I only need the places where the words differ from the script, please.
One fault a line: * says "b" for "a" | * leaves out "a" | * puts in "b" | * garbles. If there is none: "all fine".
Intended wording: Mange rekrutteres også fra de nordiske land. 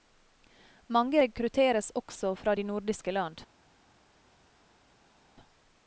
all fine